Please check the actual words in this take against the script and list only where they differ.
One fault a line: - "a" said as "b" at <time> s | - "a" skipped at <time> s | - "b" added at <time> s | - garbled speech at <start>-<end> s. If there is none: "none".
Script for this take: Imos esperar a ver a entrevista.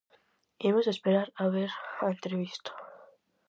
none